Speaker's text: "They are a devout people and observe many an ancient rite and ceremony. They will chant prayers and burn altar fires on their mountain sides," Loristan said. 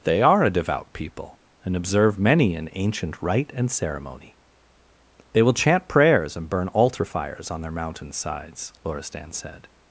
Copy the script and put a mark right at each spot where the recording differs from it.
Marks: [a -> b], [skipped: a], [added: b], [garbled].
"They are a devout people and observe many an ancient rite and ceremony. They will chant prayers and burn altar fires on their mountain sides," Loristan said.